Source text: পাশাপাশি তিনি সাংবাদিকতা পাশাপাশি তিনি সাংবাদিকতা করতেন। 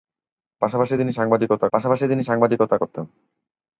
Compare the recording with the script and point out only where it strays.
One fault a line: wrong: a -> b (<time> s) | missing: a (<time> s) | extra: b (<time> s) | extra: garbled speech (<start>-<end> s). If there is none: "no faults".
no faults